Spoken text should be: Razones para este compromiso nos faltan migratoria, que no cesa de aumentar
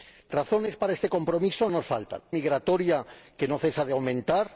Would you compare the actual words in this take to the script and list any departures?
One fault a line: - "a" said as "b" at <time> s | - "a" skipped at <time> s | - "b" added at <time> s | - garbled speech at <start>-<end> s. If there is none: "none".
none